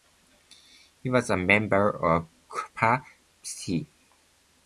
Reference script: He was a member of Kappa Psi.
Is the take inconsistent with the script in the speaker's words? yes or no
no